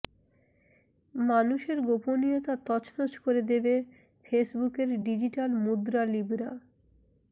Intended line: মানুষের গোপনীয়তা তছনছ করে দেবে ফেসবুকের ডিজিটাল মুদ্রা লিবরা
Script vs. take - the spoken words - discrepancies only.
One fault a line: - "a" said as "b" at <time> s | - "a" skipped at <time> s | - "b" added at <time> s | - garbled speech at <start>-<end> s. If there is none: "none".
none